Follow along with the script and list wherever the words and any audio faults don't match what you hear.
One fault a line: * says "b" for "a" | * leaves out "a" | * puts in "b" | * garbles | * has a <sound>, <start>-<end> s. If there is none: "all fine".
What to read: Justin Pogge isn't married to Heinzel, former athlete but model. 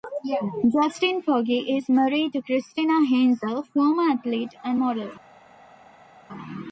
* says "is" for "isn't"
* puts in "Christina"
* says "and" for "but"